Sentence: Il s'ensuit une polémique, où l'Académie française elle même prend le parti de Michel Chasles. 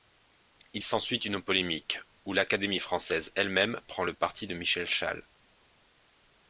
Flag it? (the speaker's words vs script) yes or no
no